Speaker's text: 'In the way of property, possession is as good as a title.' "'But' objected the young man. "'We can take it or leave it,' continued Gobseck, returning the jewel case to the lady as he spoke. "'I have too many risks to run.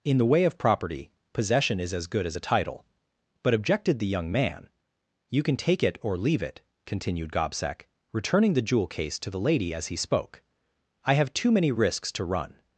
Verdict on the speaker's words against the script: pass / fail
fail